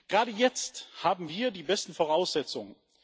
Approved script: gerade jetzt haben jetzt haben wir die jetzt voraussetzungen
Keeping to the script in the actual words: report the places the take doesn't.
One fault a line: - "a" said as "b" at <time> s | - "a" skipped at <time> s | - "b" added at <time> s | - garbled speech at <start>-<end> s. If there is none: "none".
- "jetzt haben" skipped at 1.3 s
- "jetzt" said as "besten" at 1.6 s